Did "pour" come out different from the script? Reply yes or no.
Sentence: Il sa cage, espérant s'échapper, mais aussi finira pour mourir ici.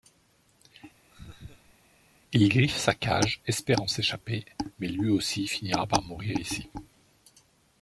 yes